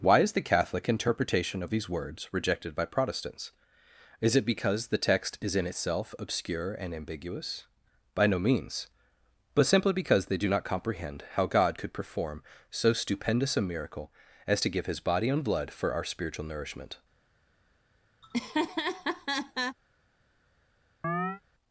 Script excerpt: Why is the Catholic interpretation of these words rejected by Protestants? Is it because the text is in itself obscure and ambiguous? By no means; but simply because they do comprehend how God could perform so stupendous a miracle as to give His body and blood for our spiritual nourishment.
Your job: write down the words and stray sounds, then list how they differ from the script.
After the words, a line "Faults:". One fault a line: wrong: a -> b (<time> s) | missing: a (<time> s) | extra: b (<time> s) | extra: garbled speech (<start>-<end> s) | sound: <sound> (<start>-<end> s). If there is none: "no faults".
Why is the Catholic interpretation of these words rejected by Protestants? Is it because the text is in itself obscure and ambiguous? By no means; but simply because they do not comprehend how God could perform so stupendous a miracle as to give His body and blood for our spiritual nourishment.
Faults:
extra: not (10.5 s)
sound: laugh (18.2-19.8 s)
sound: chirp (21.0-21.4 s)